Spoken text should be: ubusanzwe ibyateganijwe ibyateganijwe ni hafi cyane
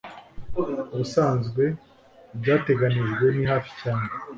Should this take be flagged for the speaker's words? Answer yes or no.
yes